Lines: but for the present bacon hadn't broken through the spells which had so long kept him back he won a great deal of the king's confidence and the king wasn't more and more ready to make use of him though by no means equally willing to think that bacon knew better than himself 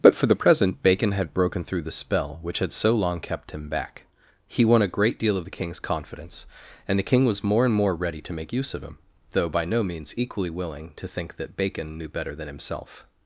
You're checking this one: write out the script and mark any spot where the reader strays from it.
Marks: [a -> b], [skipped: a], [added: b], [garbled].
but for the present bacon [hadn't -> had] broken through the [spells -> spell] which had so long kept him back he won a great deal of the king's confidence and the king [wasn't -> was] more and more ready to make use of him though by no means equally willing to think that bacon knew better than himself